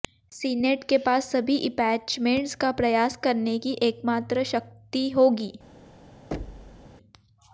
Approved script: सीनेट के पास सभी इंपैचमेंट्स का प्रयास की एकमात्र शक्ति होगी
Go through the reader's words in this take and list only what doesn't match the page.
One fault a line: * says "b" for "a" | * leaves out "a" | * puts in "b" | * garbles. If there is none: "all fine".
* puts in "करने"